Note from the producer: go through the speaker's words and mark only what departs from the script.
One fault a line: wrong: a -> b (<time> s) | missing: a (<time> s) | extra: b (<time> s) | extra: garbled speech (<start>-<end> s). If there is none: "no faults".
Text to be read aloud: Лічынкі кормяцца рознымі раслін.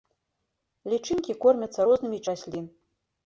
no faults